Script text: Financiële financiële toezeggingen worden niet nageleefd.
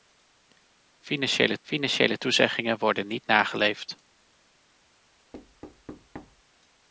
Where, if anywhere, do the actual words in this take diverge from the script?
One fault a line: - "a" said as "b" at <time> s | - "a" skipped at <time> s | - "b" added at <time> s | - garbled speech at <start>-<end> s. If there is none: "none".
none